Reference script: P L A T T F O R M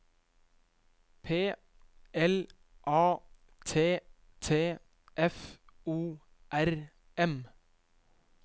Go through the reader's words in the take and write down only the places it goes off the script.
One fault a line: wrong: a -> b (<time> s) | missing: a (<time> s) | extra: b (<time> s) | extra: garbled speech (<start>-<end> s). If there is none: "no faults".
no faults